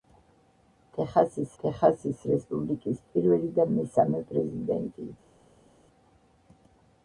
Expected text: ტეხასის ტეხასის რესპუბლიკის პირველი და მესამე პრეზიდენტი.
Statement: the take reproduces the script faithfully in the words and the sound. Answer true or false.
true